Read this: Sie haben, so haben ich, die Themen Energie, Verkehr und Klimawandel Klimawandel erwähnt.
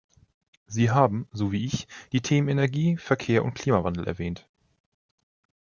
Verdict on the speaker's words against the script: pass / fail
fail